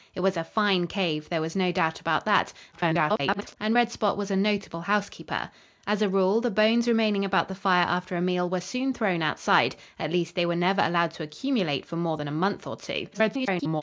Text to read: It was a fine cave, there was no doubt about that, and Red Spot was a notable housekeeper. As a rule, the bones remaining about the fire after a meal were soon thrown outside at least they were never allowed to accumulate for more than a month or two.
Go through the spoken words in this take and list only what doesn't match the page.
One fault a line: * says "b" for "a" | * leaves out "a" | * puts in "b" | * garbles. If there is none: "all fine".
* garbles
* garbles